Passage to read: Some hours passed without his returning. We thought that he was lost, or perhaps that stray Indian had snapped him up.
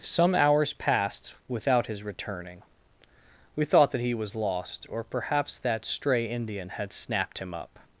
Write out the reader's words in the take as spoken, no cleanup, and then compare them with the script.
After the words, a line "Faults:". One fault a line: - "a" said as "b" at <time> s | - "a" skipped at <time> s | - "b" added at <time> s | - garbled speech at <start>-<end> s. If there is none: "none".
Some hours passed without his returning. We thought that he was lost, or perhaps that stray Indian had snapped him up.
Faults:
none